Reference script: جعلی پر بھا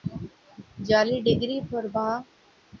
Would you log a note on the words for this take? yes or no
yes